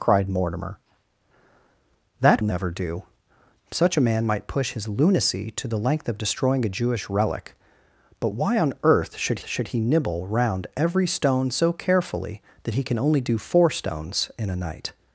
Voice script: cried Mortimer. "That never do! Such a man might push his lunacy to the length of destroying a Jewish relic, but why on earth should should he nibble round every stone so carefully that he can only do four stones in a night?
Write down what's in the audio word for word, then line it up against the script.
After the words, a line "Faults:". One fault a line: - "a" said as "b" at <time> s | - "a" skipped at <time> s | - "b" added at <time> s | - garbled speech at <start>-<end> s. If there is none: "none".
cried Mortimer. "That never do! Such a man might push his lunacy to the length of destroying a Jewish relic, but why on earth should should he nibble round every stone so carefully that he can only do four stones in a night?
Faults:
none